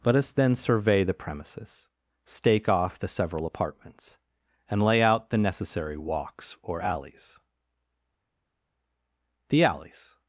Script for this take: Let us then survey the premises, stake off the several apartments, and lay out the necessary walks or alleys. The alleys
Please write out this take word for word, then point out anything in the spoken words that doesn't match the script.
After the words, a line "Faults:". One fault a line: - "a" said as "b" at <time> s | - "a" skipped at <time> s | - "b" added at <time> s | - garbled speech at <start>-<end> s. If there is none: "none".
Let us then survey the premises, stake off the several apartments, and lay out the necessary walks or alleys. The alleys
Faults:
none